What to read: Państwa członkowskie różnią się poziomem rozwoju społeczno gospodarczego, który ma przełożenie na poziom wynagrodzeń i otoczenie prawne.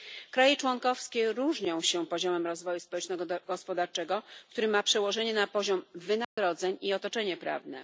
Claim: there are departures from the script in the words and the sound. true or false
true